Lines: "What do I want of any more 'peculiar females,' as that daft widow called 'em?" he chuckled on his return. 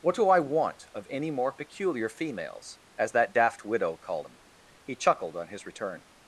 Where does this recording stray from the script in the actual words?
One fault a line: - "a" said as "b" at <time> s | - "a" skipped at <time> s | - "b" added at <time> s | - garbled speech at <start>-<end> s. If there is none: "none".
none